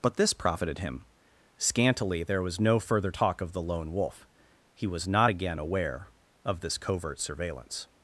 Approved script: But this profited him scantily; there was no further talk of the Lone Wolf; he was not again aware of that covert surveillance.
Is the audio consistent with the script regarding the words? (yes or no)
no